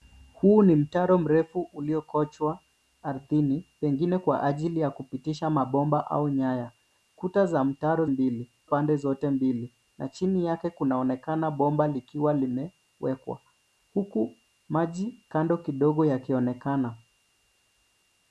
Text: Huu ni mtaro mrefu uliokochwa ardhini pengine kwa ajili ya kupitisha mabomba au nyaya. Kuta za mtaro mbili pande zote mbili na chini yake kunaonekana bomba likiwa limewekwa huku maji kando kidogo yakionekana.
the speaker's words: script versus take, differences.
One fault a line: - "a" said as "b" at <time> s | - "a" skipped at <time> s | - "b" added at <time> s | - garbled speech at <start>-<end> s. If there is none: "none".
none